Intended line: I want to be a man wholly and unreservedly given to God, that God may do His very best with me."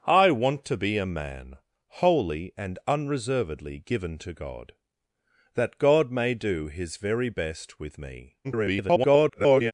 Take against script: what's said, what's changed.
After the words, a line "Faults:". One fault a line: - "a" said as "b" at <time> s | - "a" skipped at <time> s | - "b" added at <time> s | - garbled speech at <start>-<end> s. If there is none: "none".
I want to be a man wholly and unreservedly given to God, that God may do His very best with me." [garbled]
Faults:
- garbled speech at 8.4-9.7 s